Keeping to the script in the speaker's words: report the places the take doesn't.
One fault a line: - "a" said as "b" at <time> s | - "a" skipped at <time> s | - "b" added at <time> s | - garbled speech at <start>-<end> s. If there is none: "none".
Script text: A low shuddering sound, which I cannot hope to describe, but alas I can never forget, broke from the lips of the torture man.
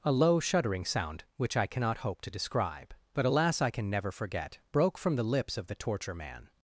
none